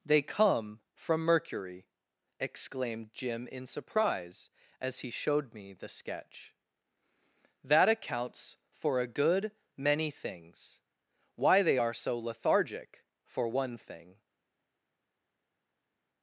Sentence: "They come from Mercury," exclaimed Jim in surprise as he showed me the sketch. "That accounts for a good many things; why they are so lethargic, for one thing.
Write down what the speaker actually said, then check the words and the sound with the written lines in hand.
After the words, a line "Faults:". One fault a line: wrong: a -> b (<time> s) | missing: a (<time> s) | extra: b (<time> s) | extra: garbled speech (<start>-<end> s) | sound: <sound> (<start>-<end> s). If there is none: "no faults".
"They come from Mercury," exclaimed Jim in surprise as he showed me the sketch. "That accounts for a good many things; why they are so lethargic, for one thing.
Faults:
no faults